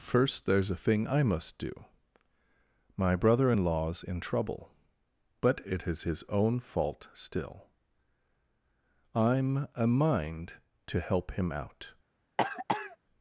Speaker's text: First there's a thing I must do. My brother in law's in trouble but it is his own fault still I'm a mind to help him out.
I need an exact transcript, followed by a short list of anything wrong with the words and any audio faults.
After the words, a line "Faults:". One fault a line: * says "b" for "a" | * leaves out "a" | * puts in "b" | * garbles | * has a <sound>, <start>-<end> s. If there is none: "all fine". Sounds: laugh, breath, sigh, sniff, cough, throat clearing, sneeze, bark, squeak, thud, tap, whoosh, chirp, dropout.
First there's a thing I must do. My brother in law's in trouble but it is his own fault still I'm a mind to help him out.
Faults:
* has a cough, 12.4-13.0 s